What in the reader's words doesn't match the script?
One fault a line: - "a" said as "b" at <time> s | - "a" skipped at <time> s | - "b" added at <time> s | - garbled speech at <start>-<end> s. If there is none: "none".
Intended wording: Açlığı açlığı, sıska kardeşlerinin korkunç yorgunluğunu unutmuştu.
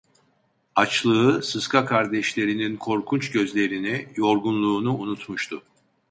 - "açlığı" skipped at 1.4 s
- "gözlerini" added at 3.3 s